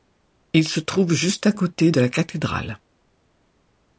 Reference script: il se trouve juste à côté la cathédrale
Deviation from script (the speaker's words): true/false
true